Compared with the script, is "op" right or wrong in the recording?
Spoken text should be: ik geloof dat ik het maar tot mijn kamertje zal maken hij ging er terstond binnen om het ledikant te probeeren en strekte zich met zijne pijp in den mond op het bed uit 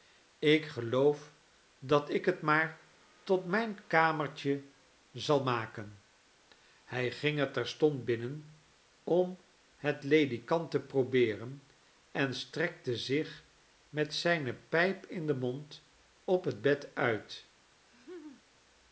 right